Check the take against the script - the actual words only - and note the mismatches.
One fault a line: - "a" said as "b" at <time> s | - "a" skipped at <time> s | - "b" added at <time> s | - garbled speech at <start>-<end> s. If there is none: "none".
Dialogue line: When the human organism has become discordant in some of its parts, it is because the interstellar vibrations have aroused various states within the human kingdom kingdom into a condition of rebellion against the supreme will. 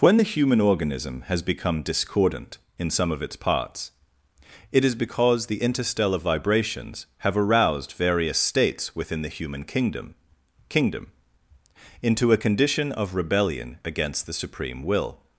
none